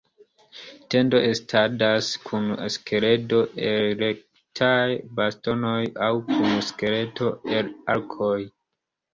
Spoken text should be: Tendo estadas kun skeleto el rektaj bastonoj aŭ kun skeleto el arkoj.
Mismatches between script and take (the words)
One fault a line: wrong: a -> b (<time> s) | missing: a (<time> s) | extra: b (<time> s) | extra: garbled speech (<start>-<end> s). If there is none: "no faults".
no faults